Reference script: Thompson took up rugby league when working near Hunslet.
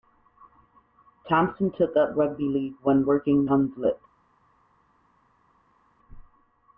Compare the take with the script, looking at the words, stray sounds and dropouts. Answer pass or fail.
fail